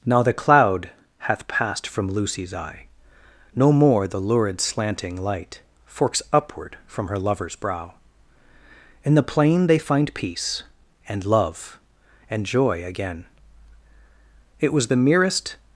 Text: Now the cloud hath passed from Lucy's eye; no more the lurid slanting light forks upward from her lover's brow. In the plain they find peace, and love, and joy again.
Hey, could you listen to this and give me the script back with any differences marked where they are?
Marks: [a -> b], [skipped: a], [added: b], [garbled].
Now the cloud hath passed from Lucy's eye; no more the lurid slanting light forks upward from her lover's brow. In the plain they find peace, and love, and joy again. [added: It was the merest]